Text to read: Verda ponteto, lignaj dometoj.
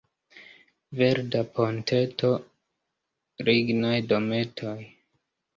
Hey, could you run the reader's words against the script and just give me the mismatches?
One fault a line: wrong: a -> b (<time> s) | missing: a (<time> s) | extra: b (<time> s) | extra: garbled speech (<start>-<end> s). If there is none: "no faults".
no faults